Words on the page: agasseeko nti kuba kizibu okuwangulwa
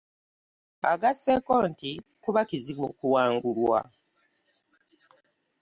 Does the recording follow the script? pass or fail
pass